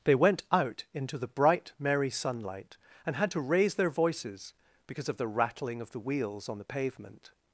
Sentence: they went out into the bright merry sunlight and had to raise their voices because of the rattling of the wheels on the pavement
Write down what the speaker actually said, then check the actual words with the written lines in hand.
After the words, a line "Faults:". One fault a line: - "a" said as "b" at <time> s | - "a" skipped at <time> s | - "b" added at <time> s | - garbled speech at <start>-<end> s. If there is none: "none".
they went out into the bright merry sunlight and had to raise their voices because of the rattling of the wheels on the pavement
Faults:
none